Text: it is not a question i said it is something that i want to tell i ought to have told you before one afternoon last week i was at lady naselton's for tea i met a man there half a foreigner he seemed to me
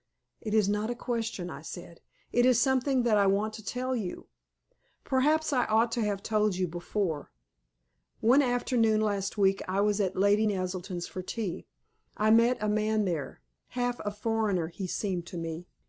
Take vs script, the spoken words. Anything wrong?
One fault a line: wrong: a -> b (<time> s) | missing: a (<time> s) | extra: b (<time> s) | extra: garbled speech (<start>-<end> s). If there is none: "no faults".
extra: you perhaps (4.0 s)